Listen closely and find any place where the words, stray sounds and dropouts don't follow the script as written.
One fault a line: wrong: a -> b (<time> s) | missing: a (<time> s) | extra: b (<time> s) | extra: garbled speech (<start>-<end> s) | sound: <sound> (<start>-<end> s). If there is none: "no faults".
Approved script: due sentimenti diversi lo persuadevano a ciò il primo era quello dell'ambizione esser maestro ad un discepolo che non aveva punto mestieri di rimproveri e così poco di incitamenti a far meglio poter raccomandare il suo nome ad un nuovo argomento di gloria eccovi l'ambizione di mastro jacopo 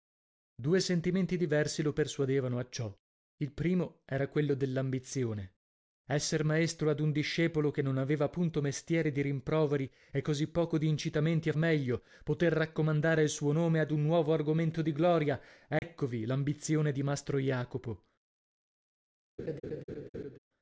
missing: far (11.5 s)
sound: dropout (15.8-15.8 s)
sound: laugh (19.4-20.4 s)